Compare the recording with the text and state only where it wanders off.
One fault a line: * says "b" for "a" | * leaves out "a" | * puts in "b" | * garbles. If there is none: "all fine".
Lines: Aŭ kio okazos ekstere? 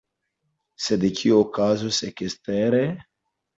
* says "Sed" for "Aŭ"